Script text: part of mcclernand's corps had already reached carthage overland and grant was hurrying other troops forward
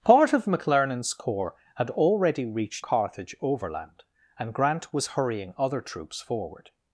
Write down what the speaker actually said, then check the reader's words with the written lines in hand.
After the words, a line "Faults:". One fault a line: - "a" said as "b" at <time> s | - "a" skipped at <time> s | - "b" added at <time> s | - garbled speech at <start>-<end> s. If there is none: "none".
part of mcclernand's corps had already reached carthage overland and grant was hurrying other troops forward
Faults:
none